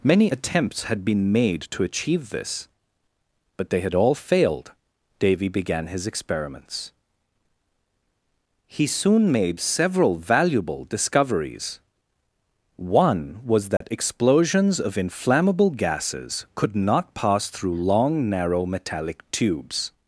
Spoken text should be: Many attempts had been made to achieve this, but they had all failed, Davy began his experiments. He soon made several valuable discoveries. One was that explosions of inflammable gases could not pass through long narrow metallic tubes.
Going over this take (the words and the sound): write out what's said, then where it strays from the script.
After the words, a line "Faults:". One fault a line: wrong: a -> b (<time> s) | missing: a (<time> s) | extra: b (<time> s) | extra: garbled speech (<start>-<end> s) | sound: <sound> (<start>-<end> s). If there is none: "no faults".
Many attempts had been made to achieve this, but they had all failed, Davy began his experiments. He soon made several valuable discoveries. One was that explosions of inflammable gases could not pass through long narrow metallic tubes.
Faults:
sound: dropout (13.8-13.8 s)